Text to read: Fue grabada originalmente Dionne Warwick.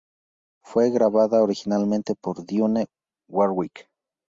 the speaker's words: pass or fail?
fail